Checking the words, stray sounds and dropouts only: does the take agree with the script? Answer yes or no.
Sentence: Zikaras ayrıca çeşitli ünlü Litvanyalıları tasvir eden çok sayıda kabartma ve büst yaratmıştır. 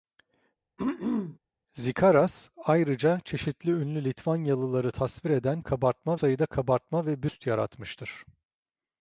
no